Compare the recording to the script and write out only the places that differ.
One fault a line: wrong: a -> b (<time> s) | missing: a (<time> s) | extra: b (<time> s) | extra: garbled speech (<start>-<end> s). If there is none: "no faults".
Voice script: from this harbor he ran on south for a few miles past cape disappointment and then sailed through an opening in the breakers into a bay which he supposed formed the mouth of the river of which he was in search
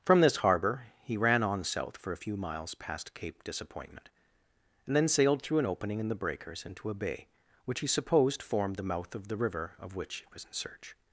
no faults